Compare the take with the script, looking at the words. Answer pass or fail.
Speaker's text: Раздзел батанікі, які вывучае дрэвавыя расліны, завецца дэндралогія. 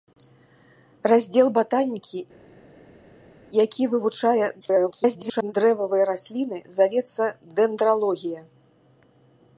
fail